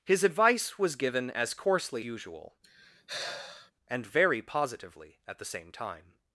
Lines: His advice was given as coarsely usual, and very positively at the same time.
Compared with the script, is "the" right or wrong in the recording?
right